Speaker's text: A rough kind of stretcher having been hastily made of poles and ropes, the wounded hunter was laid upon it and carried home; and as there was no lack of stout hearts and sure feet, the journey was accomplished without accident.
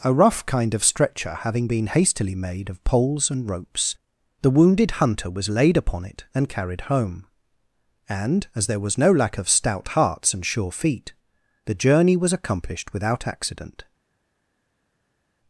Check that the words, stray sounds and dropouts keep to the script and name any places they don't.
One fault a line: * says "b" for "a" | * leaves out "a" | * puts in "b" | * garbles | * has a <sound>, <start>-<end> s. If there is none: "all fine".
all fine